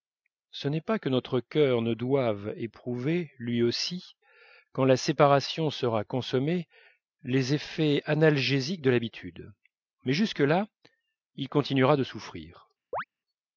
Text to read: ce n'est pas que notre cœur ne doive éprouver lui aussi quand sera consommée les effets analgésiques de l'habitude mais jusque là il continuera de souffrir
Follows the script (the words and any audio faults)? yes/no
no